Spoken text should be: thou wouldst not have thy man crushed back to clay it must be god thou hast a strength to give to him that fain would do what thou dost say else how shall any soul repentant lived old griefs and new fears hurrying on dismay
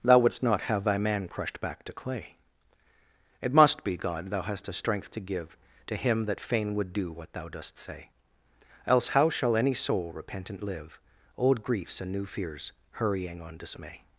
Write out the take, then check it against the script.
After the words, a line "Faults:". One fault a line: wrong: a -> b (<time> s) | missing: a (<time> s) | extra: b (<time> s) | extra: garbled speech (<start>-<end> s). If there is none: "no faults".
thou wouldst not have thy man crushed back to clay it must be god thou hast a strength to give to him that fain would do what thou dost say else how shall any soul repentant live old griefs and new fears hurrying on dismay
Faults:
wrong: lived -> live (10.6 s)